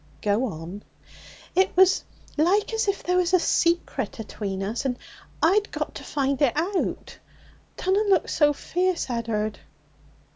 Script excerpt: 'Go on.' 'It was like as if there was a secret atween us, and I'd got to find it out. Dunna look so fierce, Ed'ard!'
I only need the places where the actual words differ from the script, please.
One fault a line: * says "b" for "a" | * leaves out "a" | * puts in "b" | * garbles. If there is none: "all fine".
all fine